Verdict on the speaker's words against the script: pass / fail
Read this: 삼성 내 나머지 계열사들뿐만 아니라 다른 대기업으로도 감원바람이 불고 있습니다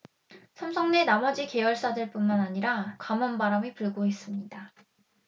fail